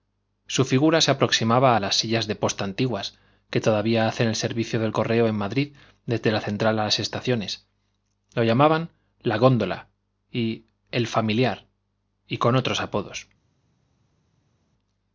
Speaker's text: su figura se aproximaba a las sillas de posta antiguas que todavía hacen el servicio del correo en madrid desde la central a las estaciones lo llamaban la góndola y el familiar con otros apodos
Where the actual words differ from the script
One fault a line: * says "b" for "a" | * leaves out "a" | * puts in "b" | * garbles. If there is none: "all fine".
* puts in "y"